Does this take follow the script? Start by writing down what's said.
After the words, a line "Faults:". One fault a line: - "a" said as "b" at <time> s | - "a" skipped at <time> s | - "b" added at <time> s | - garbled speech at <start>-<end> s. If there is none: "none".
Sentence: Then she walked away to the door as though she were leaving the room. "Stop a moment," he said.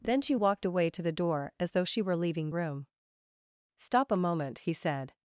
Then she walked away to the door as though she were leaving room. "Stop a moment," he said.
Faults:
- "the" skipped at 2.5 s